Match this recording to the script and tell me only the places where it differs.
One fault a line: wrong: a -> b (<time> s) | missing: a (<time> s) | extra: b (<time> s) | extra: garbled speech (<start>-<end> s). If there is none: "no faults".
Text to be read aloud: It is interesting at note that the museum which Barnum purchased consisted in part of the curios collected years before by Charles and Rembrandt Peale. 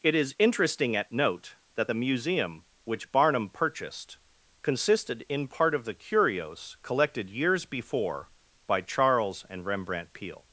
no faults